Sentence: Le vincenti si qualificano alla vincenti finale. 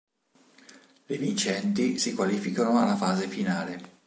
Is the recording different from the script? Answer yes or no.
yes